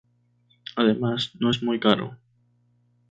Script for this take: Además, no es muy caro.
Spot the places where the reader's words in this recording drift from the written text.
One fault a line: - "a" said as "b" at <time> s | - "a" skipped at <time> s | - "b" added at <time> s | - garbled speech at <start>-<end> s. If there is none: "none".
none